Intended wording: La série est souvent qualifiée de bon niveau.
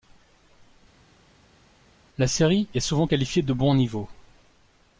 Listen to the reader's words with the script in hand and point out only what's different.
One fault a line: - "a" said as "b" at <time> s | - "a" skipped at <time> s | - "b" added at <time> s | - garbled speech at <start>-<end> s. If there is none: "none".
none